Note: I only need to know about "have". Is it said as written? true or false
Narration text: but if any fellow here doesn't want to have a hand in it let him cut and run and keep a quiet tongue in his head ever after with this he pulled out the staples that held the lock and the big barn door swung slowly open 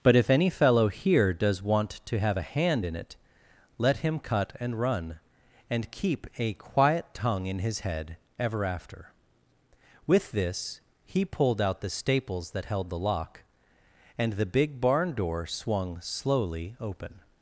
true